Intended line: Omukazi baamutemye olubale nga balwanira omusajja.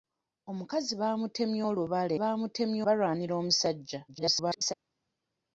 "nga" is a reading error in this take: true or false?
true